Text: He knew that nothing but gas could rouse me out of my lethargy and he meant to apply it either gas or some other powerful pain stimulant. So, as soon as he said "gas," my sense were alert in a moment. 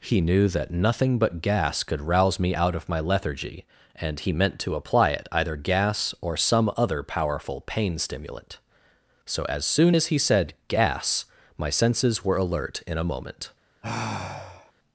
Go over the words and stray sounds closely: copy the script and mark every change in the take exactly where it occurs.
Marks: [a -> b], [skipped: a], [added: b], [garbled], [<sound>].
He knew that nothing but gas could rouse me out of my lethargy and he meant to apply it either gas or some other powerful pain stimulant. So, as soon as he said "gas," my [sense -> senses] were alert in a moment. [sigh]